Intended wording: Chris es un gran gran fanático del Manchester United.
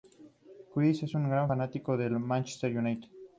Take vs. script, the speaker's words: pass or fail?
fail